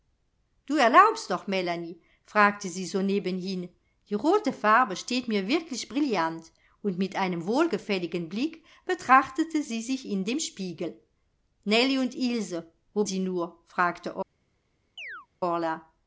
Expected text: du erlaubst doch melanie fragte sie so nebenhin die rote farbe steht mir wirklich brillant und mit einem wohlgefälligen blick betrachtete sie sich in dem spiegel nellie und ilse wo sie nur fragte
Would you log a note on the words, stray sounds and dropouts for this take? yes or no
yes